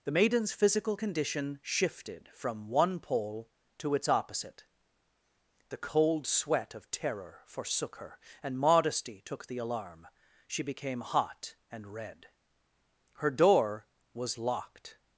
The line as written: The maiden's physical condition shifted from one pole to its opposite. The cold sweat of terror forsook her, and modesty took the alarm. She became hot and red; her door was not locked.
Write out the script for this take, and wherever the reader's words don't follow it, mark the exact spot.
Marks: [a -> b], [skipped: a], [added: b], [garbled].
The maiden's physical condition shifted from one pole to its opposite. The cold sweat of terror forsook her, and modesty took the alarm. She became hot and red; her door was [skipped: not] locked.